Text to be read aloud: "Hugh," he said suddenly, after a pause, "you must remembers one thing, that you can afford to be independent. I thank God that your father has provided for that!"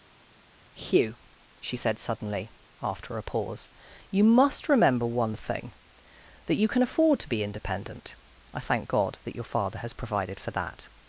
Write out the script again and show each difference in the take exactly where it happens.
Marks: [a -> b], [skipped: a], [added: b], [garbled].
"Hugh," [he -> she] said suddenly, after a pause, "you must [remembers -> remember] one thing, that you can afford to be independent. I thank God that your father has provided for that!"